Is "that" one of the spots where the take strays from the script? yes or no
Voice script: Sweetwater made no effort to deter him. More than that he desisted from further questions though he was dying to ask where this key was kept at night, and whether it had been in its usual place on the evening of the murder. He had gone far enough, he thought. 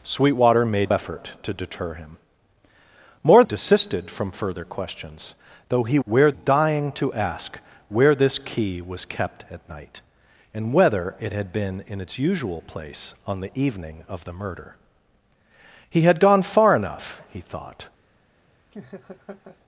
yes